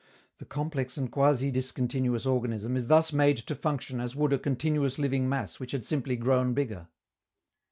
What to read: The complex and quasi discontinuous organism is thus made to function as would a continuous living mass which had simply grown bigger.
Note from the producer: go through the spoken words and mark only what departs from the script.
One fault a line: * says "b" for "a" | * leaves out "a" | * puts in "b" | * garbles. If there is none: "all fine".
all fine